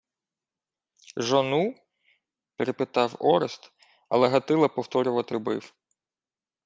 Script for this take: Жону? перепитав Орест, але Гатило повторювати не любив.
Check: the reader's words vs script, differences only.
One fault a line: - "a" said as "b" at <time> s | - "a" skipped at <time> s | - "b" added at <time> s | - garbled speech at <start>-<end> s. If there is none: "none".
- "не" skipped at 5.3 s